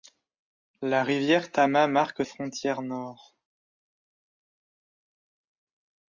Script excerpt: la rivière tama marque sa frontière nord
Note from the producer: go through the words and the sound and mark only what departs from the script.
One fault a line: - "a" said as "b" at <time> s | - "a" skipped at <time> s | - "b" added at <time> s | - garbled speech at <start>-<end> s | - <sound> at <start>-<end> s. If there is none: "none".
- "sa" skipped at 2.2 s